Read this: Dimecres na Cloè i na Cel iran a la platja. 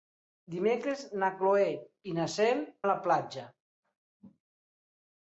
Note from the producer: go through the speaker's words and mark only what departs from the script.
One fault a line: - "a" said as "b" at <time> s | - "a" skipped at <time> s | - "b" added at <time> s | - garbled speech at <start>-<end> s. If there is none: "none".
- "iran" skipped at 2.6 s